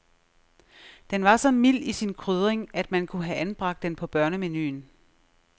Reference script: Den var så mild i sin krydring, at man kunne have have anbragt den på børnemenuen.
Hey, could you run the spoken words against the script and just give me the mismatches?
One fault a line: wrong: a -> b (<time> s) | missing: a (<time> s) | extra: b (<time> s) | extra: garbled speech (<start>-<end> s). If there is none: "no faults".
missing: have (3.4 s)